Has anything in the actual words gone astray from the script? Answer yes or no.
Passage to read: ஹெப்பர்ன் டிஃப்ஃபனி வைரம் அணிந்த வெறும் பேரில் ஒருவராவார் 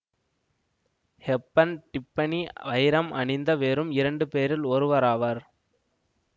yes